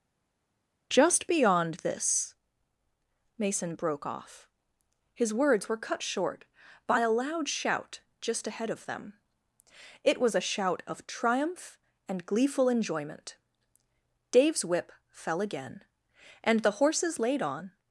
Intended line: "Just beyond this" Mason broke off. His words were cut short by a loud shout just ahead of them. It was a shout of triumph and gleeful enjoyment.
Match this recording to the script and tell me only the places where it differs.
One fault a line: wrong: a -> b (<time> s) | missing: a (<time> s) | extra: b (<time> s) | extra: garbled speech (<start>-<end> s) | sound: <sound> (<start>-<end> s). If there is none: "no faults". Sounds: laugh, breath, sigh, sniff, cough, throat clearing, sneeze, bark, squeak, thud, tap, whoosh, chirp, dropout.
extra: Dave's whip fell again and the horses laid on (14.3 s)